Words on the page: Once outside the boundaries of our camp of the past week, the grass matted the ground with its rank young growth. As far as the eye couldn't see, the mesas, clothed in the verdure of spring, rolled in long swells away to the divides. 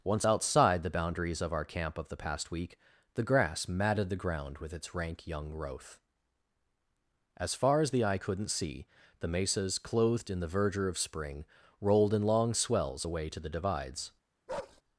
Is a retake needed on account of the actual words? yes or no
no